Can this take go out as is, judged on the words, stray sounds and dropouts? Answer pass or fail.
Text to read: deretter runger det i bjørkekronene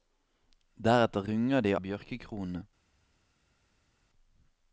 pass